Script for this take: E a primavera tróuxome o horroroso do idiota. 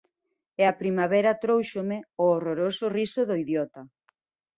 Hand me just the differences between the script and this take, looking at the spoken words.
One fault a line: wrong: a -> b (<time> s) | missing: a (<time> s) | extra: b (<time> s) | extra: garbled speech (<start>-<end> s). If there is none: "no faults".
extra: riso (3.0 s)